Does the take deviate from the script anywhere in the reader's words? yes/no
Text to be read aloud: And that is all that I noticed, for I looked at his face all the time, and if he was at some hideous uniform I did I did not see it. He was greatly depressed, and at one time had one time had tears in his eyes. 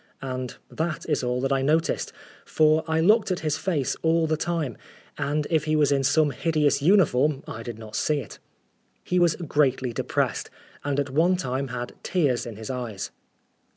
yes